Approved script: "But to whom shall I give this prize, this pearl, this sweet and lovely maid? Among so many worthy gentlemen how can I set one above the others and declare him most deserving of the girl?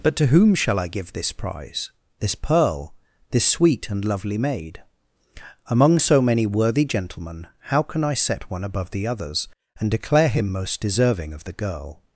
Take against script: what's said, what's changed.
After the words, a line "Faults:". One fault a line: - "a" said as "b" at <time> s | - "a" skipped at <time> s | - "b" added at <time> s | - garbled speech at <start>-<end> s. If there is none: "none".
"But to whom shall I give this prize, this pearl, this sweet and lovely maid? Among so many worthy gentlemen how can I set one above the others and declare him most deserving of the girl?
Faults:
none